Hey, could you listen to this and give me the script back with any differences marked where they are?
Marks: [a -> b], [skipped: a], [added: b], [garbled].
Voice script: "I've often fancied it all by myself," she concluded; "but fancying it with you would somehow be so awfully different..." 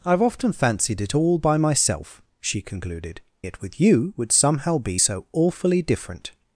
"I've often fancied it all by myself," she concluded; [skipped: "but fancying] it with you would somehow be so awfully different..."